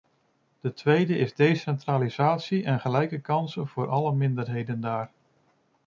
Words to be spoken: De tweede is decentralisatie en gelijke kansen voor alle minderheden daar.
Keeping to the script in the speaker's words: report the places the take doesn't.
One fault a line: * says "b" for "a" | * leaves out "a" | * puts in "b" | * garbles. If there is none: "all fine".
all fine